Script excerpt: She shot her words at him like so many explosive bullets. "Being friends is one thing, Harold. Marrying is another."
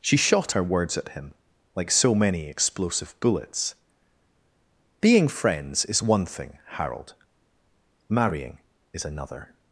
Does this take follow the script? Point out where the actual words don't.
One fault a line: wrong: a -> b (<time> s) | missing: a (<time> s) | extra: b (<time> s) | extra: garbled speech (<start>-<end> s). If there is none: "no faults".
no faults